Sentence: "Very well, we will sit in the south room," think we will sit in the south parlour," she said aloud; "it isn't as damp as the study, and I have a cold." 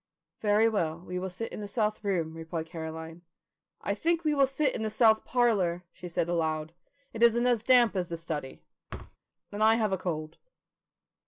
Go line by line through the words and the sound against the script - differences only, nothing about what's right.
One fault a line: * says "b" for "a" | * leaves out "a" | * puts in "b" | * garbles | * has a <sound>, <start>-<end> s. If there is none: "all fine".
* puts in "replied Caroline I"
* has a thud, 8.9-9.2 s